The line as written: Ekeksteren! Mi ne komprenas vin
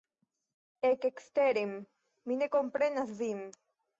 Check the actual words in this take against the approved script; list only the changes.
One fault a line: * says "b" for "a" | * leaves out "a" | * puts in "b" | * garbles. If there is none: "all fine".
all fine